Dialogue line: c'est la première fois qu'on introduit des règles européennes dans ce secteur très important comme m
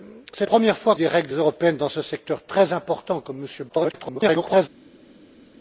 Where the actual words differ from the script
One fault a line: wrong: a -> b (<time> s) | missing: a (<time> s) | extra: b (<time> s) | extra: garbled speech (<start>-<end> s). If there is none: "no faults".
missing: la (0.5 s)
missing: qu'on introduit (1.0 s)
extra: garbled speech (3.7-4.7 s)